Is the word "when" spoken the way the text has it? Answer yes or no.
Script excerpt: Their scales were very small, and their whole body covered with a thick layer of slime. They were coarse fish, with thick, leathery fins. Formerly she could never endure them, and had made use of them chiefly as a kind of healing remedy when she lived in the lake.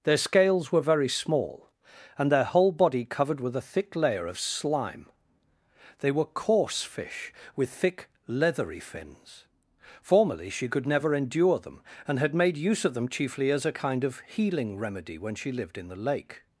yes